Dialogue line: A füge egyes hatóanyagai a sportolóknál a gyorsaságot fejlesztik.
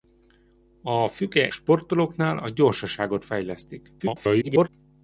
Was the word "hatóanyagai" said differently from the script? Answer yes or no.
yes